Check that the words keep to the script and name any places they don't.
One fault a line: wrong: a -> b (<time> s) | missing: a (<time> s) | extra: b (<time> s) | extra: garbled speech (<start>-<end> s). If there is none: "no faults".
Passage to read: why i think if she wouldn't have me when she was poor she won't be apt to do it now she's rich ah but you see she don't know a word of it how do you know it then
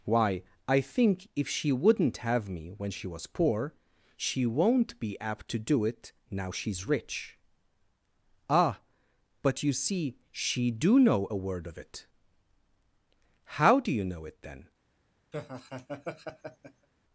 wrong: don't -> do (10.7 s)